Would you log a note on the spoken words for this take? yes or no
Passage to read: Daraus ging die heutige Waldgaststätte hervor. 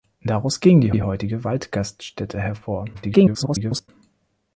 yes